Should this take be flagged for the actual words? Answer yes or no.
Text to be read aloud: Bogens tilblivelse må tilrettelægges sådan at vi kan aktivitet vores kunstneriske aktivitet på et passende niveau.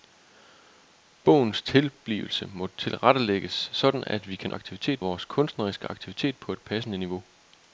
no